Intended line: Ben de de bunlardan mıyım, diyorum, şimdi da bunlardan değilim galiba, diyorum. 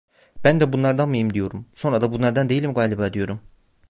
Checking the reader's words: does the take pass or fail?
fail